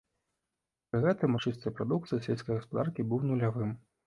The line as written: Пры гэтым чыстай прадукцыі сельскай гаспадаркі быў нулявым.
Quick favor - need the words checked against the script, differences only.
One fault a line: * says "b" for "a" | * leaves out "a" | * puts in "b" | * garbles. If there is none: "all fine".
all fine